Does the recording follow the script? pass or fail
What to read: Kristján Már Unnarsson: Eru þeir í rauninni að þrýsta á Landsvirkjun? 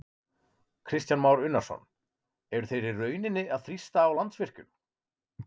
pass